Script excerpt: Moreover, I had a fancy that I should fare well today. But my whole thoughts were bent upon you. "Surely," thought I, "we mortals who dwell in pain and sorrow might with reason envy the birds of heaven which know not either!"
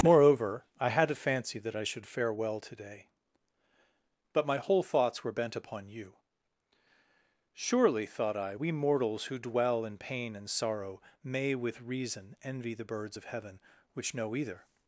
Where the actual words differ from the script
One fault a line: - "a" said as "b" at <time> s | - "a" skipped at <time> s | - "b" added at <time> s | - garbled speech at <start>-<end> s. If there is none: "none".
- "might" said as "may" at 11.2 s
- "not" skipped at 14.4 s